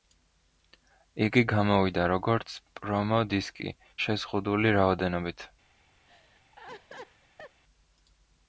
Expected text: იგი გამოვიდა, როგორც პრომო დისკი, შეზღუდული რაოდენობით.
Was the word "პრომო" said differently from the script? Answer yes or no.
no